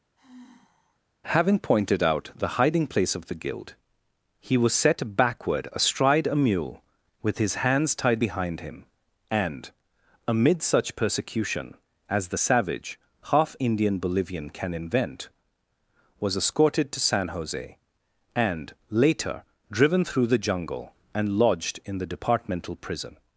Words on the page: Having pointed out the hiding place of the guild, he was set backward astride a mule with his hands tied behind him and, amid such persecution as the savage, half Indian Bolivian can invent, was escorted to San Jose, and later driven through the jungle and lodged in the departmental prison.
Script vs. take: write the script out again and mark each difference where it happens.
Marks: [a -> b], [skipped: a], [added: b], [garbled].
Having pointed out the hiding place of the guild, he was set backward astride a mule with his hands tied behind him and, amid such persecution as the savage, half Indian Bolivian can invent, was escorted to San Jose, and later driven through the jungle and lodged in the departmental prison.